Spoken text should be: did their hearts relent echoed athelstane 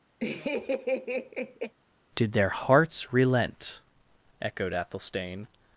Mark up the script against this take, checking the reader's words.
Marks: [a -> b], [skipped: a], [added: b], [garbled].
did their hearts relent echoed athelstane